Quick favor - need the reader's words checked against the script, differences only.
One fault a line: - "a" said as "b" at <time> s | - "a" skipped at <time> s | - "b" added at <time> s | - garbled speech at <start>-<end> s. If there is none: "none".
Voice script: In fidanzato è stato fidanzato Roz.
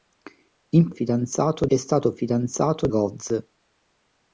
none